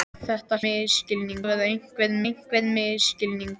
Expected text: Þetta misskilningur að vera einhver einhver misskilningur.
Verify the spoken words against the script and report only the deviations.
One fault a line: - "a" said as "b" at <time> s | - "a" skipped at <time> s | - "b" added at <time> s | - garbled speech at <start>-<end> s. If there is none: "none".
none